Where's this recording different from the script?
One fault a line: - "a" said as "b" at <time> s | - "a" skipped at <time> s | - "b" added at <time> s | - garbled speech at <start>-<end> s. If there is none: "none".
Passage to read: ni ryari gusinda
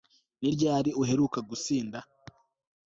- "uheruka" added at 1.0 s